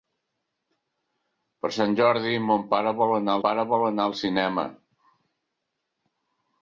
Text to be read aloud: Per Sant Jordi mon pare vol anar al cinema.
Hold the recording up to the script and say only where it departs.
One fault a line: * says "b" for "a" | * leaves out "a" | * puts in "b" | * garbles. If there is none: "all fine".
* puts in "pare vol anar"